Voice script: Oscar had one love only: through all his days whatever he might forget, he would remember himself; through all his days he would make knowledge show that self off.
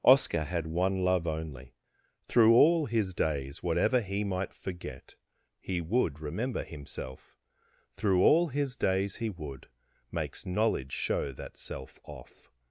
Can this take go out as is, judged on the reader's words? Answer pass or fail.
fail